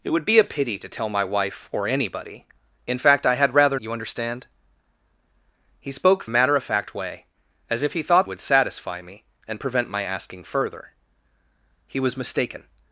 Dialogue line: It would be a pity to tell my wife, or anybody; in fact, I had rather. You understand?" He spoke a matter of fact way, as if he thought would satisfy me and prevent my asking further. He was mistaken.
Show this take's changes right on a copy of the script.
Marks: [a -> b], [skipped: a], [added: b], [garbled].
It would be a pity to tell my wife, or anybody; in fact, I had rather. You understand?" He spoke a matter of fact way, as if he thought would satisfy me and prevent my asking further. He was mistaken.